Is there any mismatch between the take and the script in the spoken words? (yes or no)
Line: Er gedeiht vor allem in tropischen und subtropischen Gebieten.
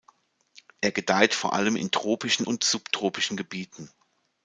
no